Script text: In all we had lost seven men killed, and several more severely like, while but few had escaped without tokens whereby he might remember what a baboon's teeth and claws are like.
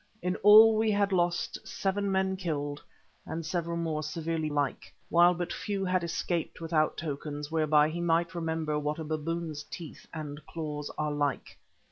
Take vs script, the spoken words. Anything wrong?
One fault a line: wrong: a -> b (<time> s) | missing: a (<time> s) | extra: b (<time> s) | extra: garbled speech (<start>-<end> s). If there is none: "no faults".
no faults